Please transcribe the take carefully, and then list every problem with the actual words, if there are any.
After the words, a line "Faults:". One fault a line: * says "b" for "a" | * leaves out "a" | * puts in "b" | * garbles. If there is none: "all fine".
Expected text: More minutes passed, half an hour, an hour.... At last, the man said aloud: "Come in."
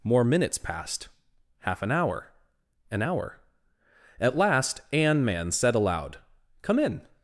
More minutes passed, half an hour, an hour.... At last, an man said aloud: "Come in."
Faults:
* says "an" for "the"